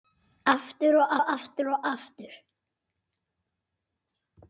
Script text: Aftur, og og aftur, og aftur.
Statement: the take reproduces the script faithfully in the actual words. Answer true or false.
true